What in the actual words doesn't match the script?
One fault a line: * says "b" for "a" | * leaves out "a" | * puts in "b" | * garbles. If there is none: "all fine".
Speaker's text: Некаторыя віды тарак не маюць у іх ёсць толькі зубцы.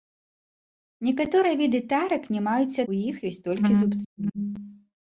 all fine